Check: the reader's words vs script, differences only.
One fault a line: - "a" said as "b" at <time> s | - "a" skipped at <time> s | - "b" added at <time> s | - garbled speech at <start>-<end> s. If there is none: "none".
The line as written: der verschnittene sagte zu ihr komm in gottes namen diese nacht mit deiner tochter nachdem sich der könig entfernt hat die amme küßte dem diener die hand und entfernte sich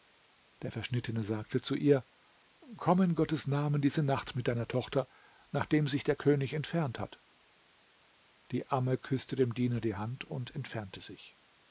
none